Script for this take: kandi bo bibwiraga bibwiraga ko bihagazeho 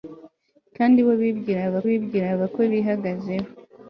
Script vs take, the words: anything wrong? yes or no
no